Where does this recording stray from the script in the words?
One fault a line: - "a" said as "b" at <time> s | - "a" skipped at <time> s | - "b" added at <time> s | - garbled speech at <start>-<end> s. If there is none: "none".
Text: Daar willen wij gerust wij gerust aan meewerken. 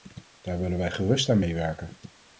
- "wij gerust" skipped at 1.3 s